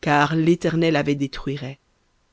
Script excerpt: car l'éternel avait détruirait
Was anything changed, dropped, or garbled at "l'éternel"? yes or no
no